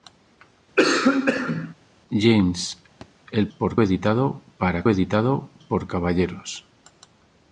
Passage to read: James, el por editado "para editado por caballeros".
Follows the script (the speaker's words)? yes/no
yes